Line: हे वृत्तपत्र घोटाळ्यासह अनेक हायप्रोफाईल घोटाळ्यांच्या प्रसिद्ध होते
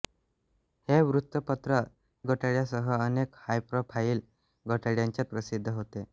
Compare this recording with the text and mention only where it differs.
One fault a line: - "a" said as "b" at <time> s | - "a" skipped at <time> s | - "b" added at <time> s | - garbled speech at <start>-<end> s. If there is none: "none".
none